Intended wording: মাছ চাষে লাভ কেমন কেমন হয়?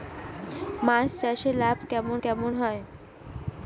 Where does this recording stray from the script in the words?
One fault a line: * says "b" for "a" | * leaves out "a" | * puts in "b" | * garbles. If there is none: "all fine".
all fine